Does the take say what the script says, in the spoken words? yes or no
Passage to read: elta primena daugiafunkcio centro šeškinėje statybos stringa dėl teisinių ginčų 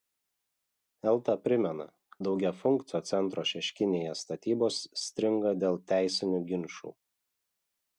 yes